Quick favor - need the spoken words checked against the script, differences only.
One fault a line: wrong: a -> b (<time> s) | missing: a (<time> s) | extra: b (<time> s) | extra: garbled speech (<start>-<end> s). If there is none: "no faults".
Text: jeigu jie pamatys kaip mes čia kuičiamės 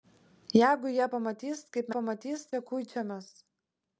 wrong: mes -> pamatys (2.0 s)